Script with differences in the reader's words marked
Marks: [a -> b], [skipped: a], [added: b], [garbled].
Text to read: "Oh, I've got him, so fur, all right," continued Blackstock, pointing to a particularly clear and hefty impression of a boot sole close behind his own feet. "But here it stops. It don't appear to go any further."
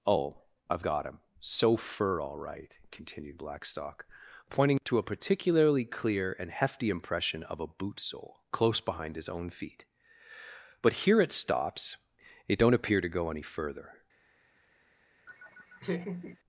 "Oh, I've got him, so fur, all right," continued Blackstock, pointing to a particularly clear and hefty impression of a boot sole close behind his own feet. "But here it stops. It don't appear to go any further."